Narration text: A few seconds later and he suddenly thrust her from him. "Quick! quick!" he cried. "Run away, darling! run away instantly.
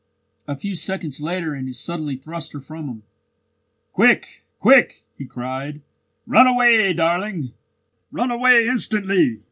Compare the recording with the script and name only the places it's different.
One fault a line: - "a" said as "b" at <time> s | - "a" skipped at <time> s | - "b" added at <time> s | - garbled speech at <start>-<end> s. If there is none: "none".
none